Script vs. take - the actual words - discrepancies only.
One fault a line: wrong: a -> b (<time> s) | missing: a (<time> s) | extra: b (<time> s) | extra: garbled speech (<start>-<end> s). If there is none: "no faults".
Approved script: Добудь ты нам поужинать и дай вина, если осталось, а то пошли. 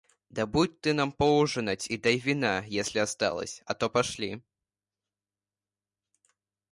no faults